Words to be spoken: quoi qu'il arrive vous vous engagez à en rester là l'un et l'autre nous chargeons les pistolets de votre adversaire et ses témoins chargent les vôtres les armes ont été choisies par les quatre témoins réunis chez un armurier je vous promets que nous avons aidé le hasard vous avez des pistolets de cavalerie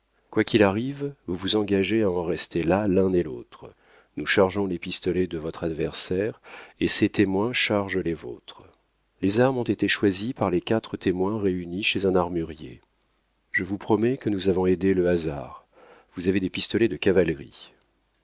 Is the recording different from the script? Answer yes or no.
no